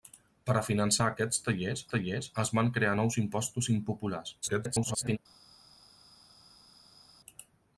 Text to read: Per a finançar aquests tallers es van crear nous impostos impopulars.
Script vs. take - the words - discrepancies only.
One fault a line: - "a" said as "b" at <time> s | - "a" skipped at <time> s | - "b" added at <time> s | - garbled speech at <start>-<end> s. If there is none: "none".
- "tallers" added at 1.9 s
- garbled speech at 4.4-5.2 s